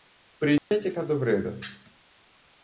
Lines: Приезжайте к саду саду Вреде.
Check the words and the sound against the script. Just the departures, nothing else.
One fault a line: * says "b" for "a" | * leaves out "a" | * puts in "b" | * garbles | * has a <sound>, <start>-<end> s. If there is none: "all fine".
* has a dropout, 0.6-0.7 s
* leaves out "саду"